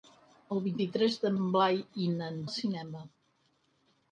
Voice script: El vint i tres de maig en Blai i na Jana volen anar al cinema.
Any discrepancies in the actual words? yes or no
yes